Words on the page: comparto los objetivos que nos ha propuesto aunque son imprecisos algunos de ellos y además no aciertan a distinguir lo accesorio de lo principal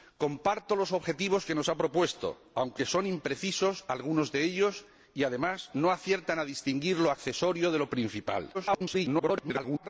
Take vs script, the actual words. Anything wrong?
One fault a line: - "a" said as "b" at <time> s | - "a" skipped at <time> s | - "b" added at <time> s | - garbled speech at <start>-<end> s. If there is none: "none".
- garbled speech at 8.5-9.9 s